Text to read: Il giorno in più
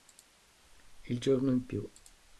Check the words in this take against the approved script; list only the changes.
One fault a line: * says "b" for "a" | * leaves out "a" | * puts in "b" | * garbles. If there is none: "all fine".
all fine